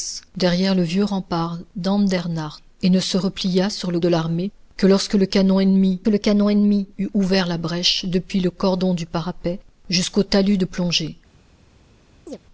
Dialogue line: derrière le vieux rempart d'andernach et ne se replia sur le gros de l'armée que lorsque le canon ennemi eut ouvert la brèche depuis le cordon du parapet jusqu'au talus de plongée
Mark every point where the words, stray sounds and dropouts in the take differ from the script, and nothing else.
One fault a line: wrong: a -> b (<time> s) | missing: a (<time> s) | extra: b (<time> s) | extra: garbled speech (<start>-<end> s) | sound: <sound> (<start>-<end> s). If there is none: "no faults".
missing: gros (4.0 s)
extra: le canon ennemi (6.1 s)
sound: chirp (12.3-12.4 s)